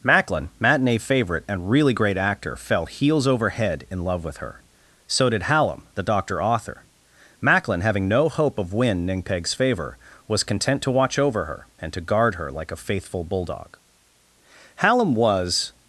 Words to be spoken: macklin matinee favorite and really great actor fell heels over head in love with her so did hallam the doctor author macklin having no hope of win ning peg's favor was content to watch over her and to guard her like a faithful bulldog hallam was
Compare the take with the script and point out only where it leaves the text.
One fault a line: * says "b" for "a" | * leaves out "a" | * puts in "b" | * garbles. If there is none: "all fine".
all fine